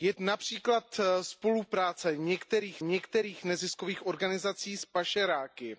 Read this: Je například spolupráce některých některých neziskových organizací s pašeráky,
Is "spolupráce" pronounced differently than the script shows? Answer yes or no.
no